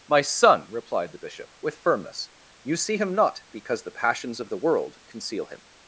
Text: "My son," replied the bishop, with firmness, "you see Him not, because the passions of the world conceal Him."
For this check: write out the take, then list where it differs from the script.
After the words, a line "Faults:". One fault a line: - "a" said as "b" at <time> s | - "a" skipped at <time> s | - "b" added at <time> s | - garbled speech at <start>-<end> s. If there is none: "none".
"My son," replied the bishop, with firmness, "you see Him not, because the passions of the world conceal Him."
Faults:
none